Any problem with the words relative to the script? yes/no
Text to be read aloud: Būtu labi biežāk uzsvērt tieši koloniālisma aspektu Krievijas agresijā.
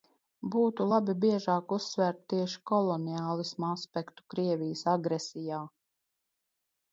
no